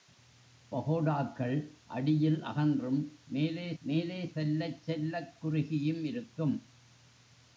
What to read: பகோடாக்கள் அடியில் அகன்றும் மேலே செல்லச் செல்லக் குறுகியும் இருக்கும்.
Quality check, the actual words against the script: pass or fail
fail